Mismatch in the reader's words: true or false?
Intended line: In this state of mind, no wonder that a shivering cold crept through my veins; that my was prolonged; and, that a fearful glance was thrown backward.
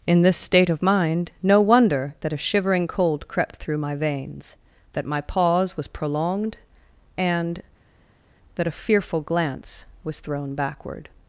true